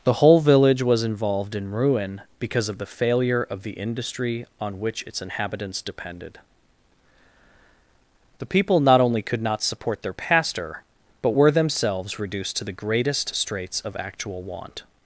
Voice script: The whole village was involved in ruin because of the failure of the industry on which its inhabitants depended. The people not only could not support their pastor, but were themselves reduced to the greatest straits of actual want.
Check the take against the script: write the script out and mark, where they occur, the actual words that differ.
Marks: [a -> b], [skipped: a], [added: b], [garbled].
The whole village was involved in ruin because of the failure of the industry on which its inhabitants depended. The people not only could not support their pastor, but were themselves reduced to the greatest straits of actual want.